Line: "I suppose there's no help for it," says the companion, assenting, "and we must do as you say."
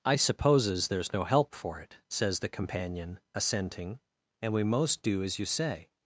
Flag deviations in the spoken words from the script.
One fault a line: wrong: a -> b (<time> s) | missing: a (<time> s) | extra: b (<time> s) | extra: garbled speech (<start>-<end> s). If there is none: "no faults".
wrong: suppose -> supposes (0.1 s)
wrong: must -> most (4.6 s)